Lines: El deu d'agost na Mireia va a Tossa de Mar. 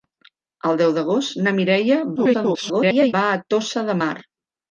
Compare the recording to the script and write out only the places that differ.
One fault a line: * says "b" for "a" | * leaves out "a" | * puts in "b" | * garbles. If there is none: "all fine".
* garbles